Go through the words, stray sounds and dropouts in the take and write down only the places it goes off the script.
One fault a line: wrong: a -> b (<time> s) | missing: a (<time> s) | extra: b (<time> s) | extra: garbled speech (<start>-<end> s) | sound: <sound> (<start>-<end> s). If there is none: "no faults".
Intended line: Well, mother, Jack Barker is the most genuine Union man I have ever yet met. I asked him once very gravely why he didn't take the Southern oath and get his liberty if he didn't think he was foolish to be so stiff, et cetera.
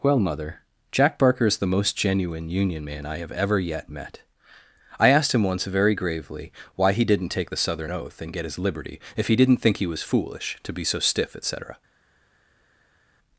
no faults